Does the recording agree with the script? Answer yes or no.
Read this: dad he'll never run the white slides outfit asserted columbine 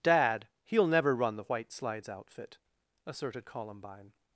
yes